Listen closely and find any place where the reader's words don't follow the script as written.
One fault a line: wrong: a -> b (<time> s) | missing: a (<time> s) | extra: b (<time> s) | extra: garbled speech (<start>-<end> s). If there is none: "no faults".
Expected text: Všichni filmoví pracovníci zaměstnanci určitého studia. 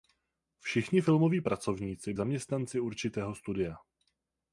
no faults